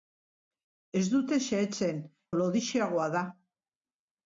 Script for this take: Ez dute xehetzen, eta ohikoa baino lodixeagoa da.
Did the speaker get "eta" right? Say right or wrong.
wrong